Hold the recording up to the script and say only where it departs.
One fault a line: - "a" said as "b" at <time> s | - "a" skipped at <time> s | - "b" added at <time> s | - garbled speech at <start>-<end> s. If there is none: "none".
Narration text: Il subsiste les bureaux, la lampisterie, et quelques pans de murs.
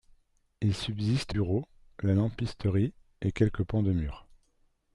- "les" skipped at 1.4 s